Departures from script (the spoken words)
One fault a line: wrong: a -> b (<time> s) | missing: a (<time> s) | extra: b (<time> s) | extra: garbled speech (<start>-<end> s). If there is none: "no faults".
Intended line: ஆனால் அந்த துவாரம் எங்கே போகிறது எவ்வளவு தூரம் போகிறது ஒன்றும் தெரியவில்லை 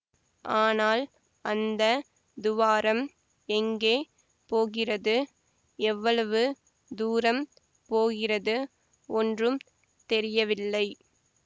no faults